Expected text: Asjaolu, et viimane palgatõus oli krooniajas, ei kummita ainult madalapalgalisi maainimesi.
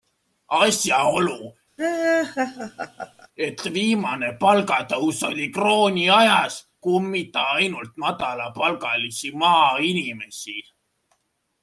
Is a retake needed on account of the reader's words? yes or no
yes